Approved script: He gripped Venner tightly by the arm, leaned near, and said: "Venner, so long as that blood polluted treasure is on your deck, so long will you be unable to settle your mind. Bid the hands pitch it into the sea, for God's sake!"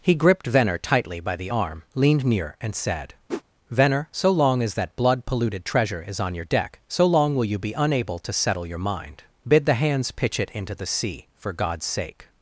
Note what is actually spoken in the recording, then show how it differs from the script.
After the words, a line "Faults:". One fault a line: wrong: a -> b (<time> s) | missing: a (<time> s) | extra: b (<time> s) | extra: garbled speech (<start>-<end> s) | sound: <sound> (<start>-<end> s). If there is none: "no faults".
He gripped Venner tightly by the arm, leaned near, and said: "Venner, so long as that blood polluted treasure is on your deck, so long will you be unable to settle your mind. Bid the hands pitch it into the sea, for God's sake!"
Faults:
sound: whoosh (3.3-3.4 s)